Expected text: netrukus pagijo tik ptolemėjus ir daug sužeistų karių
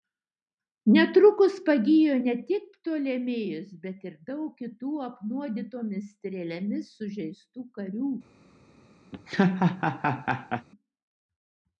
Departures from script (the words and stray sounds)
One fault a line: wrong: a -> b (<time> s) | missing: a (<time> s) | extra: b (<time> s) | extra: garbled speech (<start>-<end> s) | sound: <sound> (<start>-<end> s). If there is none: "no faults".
extra: ne (2.2 s)
extra: bet (3.9 s)
extra: kitų apnuodytomis strėlėmis (4.6 s)
sound: laugh (9.1-10.7 s)